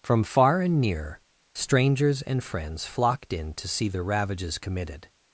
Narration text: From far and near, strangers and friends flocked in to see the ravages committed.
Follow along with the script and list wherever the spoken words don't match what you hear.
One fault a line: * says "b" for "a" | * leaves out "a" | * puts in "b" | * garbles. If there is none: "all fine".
all fine